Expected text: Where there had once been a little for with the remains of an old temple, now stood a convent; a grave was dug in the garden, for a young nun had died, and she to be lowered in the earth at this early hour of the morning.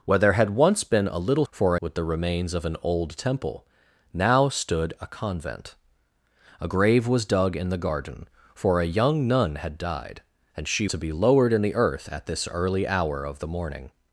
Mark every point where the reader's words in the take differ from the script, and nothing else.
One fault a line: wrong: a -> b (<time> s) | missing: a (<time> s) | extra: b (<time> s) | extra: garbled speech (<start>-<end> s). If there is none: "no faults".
no faults